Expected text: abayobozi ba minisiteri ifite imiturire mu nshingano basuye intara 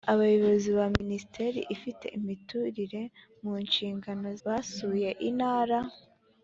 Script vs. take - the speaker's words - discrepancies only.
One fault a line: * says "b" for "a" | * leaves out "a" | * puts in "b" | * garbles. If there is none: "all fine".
all fine